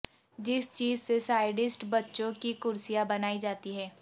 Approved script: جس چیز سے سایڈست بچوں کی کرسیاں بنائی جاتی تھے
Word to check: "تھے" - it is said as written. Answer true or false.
false